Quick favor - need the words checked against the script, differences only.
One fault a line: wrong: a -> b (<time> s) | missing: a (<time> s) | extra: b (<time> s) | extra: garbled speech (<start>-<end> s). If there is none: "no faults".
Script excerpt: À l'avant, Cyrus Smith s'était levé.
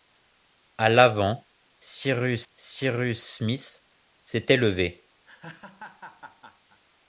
extra: Cyrus (2.5 s)